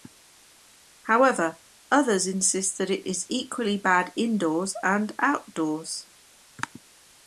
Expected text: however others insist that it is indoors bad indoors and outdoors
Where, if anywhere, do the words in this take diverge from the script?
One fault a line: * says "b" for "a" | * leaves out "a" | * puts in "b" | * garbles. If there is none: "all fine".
* says "equally" for "indoors"